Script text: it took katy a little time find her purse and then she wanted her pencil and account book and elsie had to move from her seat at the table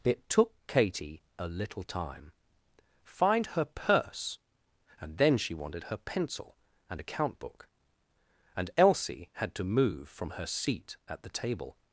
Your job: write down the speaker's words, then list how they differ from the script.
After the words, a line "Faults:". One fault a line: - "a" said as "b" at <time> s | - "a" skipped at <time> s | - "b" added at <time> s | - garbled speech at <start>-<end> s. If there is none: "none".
it took katy a little time find her purse and then she wanted her pencil and account book and elsie had to move from her seat at the table
Faults:
none